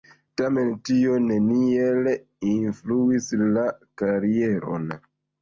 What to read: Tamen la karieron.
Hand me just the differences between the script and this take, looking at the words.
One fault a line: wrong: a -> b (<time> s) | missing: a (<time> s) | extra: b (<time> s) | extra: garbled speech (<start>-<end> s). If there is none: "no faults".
extra: tio neniel influis (0.9 s)